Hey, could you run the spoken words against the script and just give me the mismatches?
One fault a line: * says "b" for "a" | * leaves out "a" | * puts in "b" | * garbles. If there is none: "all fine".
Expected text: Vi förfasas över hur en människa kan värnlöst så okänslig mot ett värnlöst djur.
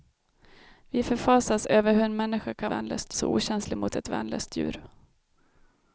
all fine